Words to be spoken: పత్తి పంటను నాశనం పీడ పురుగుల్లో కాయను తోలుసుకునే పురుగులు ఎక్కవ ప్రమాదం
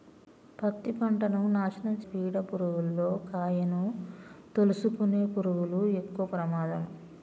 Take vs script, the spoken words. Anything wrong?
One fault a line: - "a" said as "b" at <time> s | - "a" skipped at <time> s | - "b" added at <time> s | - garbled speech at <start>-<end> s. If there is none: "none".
none